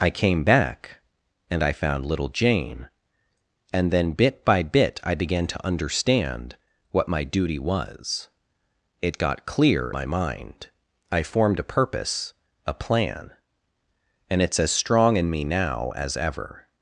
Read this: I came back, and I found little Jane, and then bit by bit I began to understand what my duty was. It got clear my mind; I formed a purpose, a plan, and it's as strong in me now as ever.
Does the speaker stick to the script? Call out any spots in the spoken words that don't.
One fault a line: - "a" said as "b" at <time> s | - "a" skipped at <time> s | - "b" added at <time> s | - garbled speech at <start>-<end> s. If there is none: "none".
none